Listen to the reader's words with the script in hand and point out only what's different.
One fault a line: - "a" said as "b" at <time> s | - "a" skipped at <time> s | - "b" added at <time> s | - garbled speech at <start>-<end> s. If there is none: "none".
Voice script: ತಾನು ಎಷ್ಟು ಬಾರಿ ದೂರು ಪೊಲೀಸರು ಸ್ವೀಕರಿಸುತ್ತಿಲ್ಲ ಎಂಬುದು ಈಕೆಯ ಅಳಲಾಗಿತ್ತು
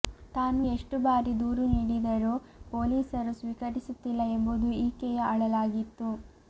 - "ನೀಡಿದರೂ" added at 1.7 s